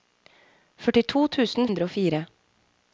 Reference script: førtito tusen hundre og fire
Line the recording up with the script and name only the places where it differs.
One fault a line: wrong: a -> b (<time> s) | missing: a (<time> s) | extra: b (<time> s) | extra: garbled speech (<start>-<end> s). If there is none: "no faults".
no faults